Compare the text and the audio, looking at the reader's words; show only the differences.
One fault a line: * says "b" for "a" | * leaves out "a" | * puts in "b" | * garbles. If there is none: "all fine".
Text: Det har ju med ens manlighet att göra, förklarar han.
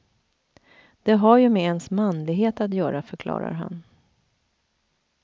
all fine